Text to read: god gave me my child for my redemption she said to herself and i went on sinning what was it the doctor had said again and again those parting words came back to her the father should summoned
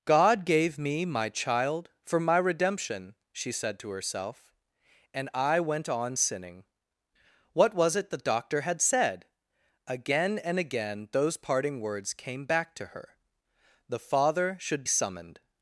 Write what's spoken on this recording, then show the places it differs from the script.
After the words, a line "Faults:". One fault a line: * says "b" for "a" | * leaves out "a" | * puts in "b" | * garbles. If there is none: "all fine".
god gave me my child for my redemption she said to herself and i went on sinning what was it the doctor had said again and again those parting words came back to her the father should summoned
Faults:
all fine